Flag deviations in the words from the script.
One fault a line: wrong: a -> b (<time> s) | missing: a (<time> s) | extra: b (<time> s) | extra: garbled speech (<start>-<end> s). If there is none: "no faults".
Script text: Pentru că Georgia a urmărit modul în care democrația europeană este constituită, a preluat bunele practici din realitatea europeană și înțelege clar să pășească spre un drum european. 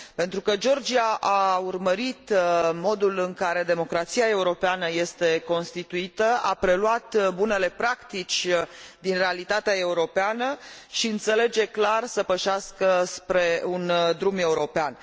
no faults